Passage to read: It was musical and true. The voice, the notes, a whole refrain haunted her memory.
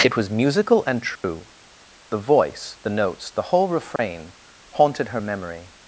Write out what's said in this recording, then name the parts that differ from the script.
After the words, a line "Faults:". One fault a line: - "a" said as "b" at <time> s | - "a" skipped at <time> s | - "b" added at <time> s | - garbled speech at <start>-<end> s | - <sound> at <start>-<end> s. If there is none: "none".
It was musical and true. The voice, the notes, the whole refrain haunted her memory.
Faults:
- dropout at 1.2-1.2 s
- "a" said as "the" at 3.3 s
- dropout at 4.0-4.0 s